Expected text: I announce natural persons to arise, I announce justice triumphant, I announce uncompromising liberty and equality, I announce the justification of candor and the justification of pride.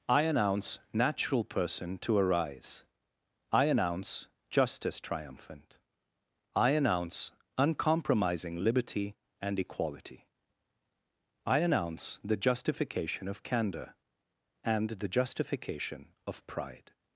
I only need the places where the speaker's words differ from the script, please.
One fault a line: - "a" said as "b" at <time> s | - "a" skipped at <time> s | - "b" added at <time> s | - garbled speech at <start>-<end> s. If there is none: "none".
- "persons" said as "person" at 1.4 s